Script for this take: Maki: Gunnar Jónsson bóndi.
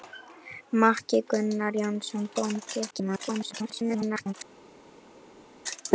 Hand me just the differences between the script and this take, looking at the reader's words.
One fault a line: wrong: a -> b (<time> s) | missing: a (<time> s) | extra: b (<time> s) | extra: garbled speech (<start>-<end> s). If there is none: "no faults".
extra: garbled speech (2.9-4.3 s)